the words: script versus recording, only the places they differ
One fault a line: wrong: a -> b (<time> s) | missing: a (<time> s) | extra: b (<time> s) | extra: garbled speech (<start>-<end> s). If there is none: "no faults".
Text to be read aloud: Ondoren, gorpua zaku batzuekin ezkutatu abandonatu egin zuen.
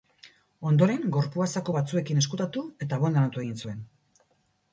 extra: eta (2.9 s)